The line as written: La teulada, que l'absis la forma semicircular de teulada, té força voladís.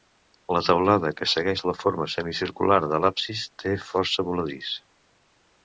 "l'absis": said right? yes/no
no